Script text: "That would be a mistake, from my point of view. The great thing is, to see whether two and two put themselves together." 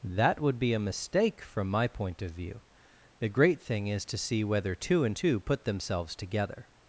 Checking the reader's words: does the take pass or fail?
pass